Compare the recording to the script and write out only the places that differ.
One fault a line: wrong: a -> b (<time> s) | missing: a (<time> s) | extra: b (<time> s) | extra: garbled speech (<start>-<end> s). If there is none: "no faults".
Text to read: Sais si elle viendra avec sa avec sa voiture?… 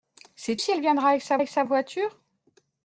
no faults